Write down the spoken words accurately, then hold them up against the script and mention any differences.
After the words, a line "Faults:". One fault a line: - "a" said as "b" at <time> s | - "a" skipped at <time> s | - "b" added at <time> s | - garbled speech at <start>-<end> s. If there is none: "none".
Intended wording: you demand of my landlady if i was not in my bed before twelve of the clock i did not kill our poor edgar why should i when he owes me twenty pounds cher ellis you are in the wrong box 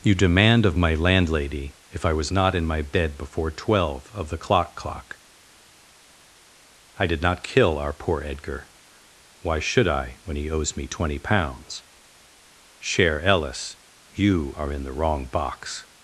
you demand of my landlady if i was not in my bed before twelve of the clock clock i did not kill our poor edgar why should i when he owes me twenty pounds cher ellis you are in the wrong box
Faults:
- "clock" added at 4.8 s